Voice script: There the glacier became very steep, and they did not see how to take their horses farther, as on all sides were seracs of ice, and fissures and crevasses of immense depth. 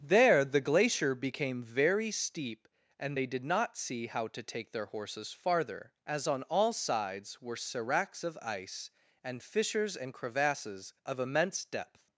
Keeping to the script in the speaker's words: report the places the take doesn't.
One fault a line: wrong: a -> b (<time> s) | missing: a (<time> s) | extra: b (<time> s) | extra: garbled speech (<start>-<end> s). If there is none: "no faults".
no faults